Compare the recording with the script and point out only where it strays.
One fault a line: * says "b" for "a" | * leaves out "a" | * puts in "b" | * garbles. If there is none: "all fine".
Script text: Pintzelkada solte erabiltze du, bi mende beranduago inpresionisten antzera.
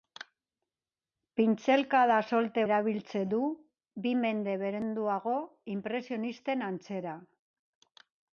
all fine